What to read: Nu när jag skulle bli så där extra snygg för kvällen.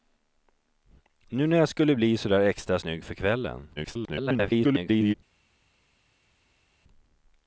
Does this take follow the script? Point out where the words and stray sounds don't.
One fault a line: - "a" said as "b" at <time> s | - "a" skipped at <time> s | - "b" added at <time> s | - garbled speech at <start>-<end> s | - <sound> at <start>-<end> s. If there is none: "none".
- garbled speech at 3.8-5.1 s